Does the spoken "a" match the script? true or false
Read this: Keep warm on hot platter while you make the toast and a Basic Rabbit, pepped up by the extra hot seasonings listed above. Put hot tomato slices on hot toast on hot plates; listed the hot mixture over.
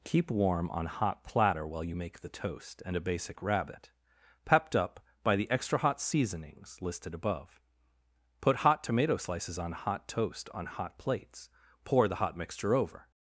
true